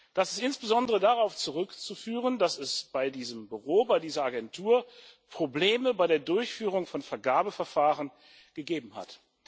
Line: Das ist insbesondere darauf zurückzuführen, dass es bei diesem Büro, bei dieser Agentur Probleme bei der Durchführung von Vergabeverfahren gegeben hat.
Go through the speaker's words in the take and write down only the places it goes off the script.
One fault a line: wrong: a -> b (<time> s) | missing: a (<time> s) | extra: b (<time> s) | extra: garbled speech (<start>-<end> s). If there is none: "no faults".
no faults